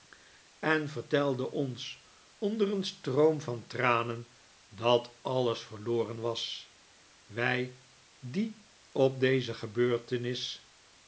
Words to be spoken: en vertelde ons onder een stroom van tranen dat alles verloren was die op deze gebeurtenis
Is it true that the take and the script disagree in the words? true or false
true